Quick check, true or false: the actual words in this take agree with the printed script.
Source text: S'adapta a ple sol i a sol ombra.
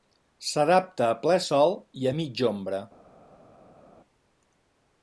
false